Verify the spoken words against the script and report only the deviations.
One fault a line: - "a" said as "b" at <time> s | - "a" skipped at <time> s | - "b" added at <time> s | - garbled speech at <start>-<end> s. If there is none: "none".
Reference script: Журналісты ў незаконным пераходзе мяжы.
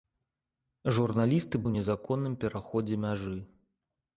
none